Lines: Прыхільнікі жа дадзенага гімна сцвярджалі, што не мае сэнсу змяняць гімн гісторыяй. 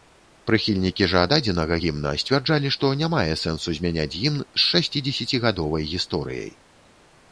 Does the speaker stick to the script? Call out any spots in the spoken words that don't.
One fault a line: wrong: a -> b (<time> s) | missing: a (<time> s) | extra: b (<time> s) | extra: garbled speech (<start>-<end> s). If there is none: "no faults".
extra: з шасцідзесяцігадовай (4.4 s)